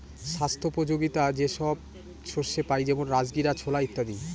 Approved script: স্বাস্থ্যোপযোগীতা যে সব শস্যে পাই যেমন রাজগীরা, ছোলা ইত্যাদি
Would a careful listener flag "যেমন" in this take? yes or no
no